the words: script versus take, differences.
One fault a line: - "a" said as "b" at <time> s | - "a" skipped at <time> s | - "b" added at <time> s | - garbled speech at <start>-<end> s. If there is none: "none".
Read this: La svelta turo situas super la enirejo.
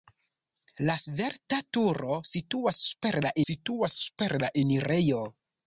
- "situas super la" added at 3.5 s